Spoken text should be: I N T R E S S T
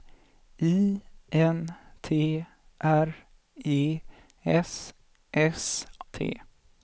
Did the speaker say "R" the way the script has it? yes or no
yes